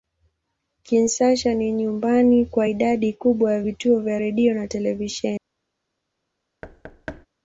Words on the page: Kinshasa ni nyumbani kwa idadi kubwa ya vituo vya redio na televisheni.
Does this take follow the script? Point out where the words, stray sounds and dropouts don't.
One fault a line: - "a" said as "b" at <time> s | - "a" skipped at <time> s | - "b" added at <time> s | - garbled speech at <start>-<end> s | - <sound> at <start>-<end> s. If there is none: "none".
- thud at 6.6-7.3 s